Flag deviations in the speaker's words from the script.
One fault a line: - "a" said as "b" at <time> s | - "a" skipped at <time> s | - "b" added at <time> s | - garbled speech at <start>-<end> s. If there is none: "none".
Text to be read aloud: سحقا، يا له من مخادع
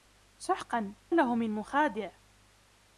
- "يا" skipped at 0.9 s